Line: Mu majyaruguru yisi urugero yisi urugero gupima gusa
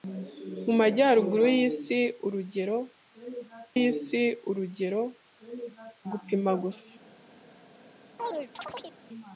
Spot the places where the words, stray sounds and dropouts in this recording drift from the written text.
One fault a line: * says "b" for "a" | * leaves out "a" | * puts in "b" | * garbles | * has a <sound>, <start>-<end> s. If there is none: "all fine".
* has a chirp, 8.2-9.0 s